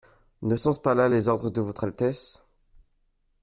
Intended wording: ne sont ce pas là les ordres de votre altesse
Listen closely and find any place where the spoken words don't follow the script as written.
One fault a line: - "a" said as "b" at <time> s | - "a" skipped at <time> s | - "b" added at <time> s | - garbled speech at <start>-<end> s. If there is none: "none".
none